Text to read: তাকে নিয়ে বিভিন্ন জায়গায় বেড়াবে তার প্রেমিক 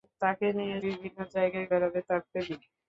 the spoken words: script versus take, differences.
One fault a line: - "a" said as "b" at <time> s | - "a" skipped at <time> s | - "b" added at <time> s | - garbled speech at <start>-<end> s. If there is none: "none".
none